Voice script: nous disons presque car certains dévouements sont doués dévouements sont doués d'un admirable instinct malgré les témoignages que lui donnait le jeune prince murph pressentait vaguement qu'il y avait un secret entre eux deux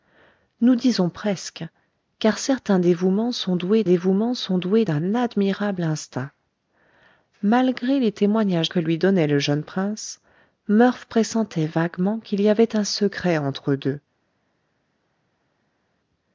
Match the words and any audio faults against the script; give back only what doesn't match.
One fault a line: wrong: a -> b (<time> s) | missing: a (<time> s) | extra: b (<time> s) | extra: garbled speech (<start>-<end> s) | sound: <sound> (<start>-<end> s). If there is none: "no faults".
no faults